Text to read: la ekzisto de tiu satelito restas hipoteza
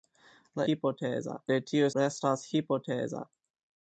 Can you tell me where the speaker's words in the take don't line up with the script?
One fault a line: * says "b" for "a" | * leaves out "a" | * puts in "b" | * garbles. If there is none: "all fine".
* says "hipoteza" for "ekzisto"
* leaves out "satelito"